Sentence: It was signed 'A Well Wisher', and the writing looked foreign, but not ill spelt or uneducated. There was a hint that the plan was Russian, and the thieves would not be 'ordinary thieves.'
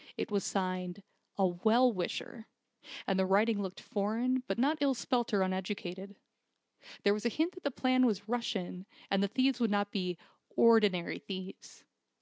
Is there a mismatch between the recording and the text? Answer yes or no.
no